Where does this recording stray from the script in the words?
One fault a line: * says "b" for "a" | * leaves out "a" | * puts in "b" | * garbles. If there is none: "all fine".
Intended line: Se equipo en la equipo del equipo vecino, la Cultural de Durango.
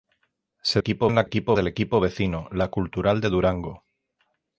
all fine